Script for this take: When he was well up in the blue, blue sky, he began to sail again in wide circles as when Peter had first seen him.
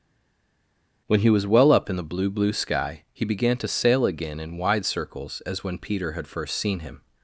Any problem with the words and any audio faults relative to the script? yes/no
no